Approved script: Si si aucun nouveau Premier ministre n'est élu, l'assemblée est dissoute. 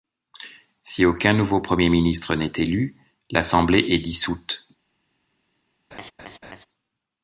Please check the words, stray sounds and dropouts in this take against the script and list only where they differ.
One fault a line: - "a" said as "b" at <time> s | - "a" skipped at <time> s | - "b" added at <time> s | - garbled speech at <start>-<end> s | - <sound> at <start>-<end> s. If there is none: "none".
- "si" skipped at 1.1 s
- laugh at 5.9-6.7 s